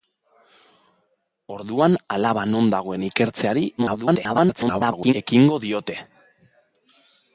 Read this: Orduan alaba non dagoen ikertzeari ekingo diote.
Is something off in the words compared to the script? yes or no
yes